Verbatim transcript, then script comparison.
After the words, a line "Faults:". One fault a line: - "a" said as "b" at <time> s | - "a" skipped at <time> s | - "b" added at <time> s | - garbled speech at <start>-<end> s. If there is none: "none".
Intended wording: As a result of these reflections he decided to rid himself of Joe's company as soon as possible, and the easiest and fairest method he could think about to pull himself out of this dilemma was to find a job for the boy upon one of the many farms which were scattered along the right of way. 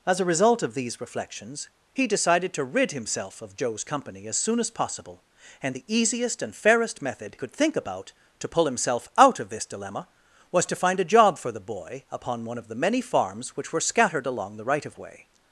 As a result of these reflections he decided to rid himself of Joe's company as soon as possible, and the easiest and fairest method could think about to pull himself out of this dilemma was to find a job for the boy upon one of the many farms which were scattered along the right of way.
Faults:
- "he" skipped at 7.3 s